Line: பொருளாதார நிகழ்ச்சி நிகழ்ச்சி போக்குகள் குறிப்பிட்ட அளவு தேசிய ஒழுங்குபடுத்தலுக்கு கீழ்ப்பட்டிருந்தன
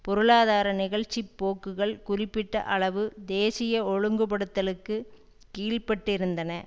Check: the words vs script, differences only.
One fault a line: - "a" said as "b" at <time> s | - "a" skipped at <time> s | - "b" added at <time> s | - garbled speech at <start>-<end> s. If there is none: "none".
- "நிகழ்ச்சி" skipped at 1.2 s